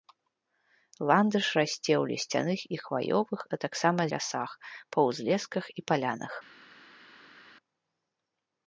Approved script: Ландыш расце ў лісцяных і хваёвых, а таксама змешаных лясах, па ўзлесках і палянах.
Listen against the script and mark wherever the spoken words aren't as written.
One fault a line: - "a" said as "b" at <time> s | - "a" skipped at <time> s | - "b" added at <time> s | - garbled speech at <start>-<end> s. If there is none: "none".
- "змешаных" skipped at 4.0 s